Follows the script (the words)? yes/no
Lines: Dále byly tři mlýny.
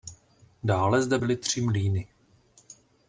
no